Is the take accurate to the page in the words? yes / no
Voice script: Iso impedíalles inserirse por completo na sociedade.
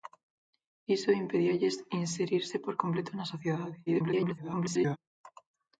no